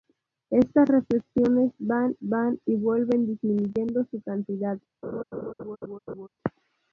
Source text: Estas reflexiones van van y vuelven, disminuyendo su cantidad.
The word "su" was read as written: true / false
true